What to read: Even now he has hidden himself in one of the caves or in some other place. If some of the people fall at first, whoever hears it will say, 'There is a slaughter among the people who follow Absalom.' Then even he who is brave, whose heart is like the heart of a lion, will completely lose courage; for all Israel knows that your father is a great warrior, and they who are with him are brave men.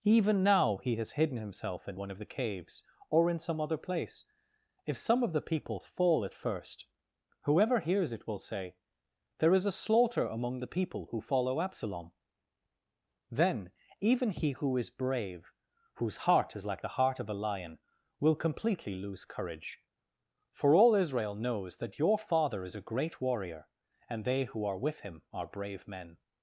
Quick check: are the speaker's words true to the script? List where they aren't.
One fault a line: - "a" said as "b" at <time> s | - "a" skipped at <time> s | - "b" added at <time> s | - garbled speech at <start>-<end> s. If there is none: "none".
none